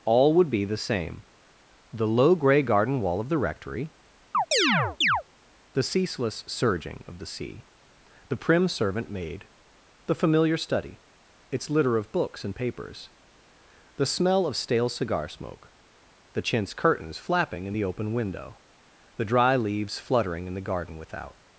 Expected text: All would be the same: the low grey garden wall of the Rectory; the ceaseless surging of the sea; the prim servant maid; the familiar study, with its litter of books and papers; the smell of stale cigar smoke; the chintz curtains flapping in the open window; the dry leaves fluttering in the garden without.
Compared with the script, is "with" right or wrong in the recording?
wrong